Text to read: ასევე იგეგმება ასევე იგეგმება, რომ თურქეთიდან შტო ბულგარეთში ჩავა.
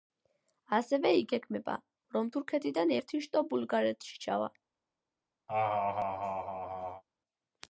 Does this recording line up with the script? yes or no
no